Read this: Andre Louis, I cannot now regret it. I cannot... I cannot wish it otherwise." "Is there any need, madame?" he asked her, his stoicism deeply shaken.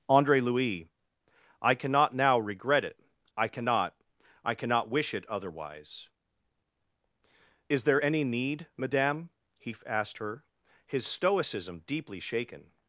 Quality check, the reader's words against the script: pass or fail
pass